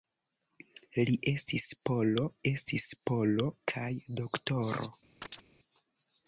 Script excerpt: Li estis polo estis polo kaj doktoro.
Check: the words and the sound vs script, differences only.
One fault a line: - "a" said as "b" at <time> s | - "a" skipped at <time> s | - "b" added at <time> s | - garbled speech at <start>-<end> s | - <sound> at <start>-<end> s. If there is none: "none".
- chirp at 5.2-5.5 s